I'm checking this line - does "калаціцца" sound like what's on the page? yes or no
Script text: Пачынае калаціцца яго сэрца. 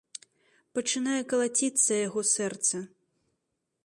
yes